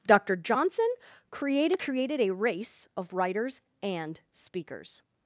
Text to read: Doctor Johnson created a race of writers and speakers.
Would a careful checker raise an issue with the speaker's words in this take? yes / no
yes